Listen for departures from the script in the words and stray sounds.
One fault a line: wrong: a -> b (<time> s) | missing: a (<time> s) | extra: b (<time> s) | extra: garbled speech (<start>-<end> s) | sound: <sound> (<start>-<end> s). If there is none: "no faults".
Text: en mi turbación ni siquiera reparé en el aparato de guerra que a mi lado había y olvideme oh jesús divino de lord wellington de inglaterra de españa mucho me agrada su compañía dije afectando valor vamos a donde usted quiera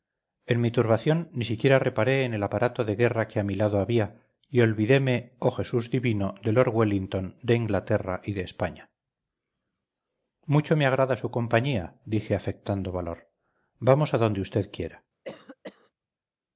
extra: y (8.2 s)
sound: cough (15.2-15.9 s)